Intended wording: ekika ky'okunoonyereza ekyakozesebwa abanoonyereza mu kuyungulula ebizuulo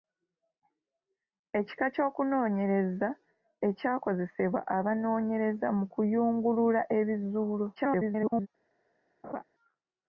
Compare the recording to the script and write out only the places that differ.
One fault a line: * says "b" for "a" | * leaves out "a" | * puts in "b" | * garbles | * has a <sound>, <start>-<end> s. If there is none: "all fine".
* garbles
* has a laugh, 9.2-9.4 s